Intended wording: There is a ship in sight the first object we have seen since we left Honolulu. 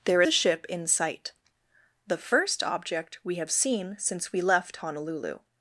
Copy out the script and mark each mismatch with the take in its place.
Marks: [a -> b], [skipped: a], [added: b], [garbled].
There [skipped: is] a ship in sight the first object we have seen since we left Honolulu.